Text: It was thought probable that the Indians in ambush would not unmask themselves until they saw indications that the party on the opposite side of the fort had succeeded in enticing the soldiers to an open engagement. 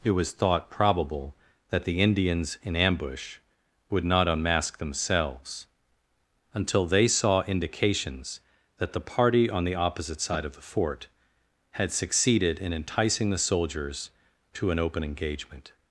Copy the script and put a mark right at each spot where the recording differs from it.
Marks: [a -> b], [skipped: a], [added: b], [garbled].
It was thought probable that the Indians in ambush would not unmask themselves until they saw indications that the party on the opposite side of the fort had succeeded in enticing the soldiers to an open engagement.